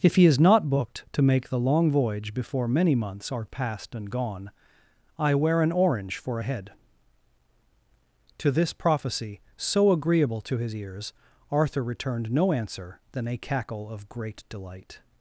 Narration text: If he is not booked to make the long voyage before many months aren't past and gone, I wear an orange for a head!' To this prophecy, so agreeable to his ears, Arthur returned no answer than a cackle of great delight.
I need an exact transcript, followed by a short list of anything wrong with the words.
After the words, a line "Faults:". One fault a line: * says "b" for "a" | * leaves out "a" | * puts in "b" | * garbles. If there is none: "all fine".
If he is not booked to make the long voyage before many months are past and gone, I wear an orange for a head!' To this prophecy, so agreeable to his ears, Arthur returned no answer than a cackle of great delight.
Faults:
* says "are" for "aren't"